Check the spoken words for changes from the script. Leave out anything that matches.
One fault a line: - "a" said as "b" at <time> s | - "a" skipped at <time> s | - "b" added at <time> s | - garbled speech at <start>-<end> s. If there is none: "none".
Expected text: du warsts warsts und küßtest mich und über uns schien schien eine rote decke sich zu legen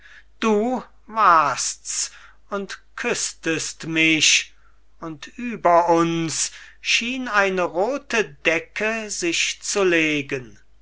- "warsts" skipped at 2.1 s
- "schien" skipped at 7.3 s